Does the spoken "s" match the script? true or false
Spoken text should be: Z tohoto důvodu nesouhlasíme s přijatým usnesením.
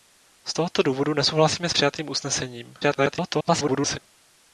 true